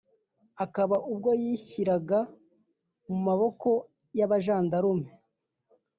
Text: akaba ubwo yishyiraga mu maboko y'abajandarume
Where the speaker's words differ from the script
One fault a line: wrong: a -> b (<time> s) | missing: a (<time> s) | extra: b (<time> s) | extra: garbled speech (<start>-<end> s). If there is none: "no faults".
no faults